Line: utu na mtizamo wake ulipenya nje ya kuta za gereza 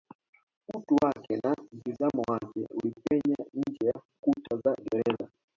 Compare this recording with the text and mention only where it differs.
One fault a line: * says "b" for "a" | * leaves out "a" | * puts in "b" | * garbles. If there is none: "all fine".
* puts in "wake"